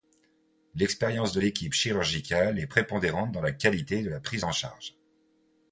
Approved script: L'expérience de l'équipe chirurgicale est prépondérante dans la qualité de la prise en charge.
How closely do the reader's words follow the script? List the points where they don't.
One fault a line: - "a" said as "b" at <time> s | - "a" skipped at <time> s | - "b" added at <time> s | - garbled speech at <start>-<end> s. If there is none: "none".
none